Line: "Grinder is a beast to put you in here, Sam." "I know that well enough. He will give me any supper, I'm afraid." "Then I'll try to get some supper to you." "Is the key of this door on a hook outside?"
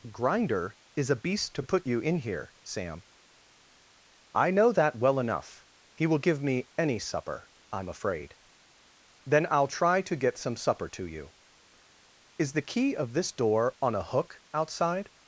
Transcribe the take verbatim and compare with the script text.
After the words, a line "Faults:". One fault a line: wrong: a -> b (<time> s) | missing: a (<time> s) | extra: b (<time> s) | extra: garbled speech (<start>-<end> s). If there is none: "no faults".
"Grinder is a beast to put you in here, Sam." "I know that well enough. He will give me any supper, I'm afraid." "Then I'll try to get some supper to you." "Is the key of this door on a hook outside?"
Faults:
no faults